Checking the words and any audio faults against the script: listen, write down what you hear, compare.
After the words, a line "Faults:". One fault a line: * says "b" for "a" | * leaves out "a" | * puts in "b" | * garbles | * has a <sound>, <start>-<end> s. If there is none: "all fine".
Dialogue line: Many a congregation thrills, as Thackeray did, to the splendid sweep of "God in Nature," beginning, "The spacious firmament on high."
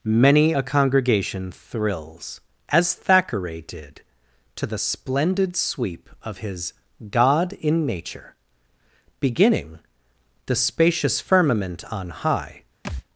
Many a congregation thrills, as Thackeray did, to the splendid sweep of his "God in Nature," beginning, "The spacious firmament on high."
Faults:
* puts in "his"
* has a thud, 12.8-13.0 s